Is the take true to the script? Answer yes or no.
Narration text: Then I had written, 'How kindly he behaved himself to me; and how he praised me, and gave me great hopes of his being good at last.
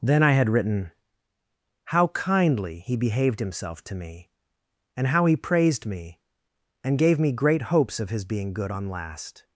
no